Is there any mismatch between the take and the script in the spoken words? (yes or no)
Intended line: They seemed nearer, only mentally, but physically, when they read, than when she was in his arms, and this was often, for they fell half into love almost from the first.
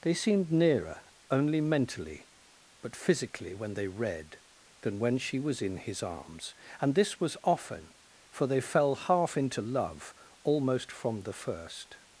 no